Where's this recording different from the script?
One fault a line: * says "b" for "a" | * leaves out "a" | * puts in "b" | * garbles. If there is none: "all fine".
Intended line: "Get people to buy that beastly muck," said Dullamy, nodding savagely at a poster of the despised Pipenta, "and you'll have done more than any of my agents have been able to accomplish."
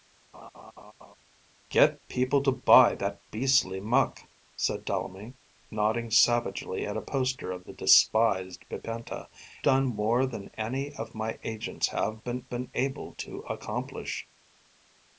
* leaves out "and you'll have"
* puts in "been"